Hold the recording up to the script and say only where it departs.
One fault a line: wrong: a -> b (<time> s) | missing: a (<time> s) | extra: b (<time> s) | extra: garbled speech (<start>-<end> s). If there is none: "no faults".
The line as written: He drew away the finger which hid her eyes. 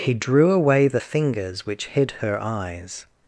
wrong: finger -> fingers (1.0 s)